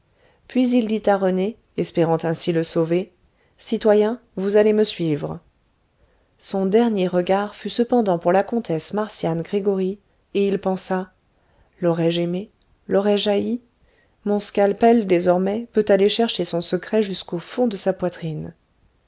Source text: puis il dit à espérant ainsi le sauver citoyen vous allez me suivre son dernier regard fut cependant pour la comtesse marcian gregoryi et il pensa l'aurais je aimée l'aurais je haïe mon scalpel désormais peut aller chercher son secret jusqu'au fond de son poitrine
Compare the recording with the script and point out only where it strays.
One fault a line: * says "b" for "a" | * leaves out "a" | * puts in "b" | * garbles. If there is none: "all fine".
* puts in "rené"
* says "sa" for "son"